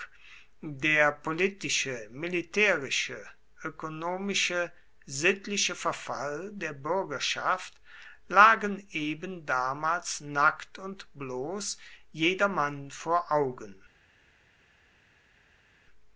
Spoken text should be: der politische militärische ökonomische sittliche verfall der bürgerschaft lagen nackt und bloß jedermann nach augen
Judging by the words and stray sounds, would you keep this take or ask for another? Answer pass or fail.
fail